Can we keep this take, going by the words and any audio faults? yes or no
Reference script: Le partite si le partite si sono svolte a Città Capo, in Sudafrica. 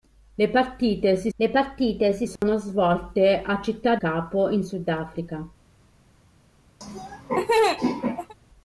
no